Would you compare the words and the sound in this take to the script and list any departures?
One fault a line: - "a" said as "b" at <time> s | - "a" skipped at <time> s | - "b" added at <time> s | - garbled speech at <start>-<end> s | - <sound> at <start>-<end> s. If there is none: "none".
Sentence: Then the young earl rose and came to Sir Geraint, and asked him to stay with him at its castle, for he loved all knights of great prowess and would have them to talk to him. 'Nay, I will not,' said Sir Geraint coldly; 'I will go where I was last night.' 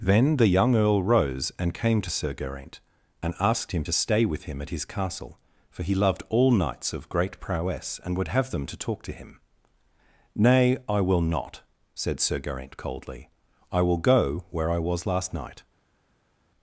- "its" said as "his" at 4.7 s